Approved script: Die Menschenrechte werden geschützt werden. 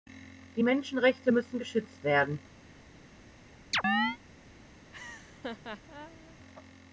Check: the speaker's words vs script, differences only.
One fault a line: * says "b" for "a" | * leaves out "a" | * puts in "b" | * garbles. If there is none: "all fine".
* says "müssen" for "werden"